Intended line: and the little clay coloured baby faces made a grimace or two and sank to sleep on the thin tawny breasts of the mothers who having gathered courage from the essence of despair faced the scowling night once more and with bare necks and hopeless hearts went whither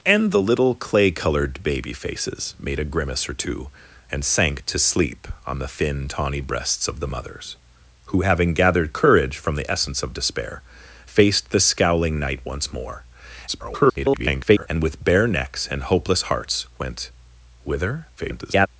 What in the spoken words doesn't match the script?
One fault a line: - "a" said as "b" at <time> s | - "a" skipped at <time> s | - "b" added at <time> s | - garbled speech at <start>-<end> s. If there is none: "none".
- garbled speech at 13.5-14.7 s
- garbled speech at 18.2-18.7 s